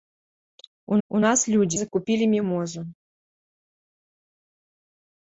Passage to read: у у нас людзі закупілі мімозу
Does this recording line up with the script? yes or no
yes